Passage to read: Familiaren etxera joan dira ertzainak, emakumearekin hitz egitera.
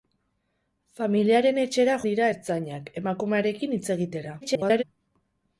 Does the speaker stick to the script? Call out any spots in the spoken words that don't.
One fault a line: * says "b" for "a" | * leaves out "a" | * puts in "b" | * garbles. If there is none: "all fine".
* leaves out "joan"
* garbles